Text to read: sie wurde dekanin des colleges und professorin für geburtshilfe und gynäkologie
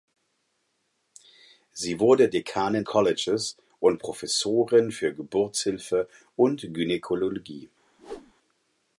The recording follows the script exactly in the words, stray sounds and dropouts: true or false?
false